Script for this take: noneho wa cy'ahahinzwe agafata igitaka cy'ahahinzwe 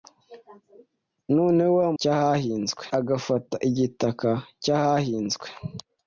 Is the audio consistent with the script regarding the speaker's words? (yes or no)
yes